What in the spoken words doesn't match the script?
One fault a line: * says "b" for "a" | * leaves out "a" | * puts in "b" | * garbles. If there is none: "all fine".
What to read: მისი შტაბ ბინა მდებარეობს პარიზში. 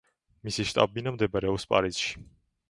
all fine